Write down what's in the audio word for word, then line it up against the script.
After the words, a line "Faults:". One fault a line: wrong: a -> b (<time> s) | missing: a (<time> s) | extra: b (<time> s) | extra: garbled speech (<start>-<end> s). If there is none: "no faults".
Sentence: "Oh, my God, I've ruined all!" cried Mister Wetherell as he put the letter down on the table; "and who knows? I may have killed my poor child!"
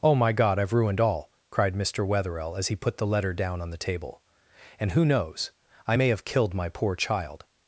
"Oh, my God, I've ruined all!" cried Mister Wetherell as he put the letter down on the table; "and who knows? I may have killed my poor child!"
Faults:
no faults